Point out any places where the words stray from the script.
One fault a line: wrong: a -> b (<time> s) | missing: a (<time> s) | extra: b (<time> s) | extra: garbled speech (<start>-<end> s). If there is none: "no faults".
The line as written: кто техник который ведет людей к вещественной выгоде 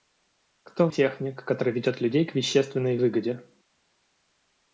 no faults